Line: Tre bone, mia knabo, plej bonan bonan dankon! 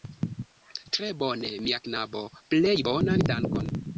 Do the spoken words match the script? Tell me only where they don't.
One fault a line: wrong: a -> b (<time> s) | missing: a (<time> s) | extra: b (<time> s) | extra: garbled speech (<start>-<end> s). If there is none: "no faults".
missing: bonan (3.3 s)